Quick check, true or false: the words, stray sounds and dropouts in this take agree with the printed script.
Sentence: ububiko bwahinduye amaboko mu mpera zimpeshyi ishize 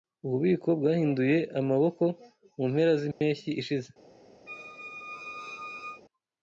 false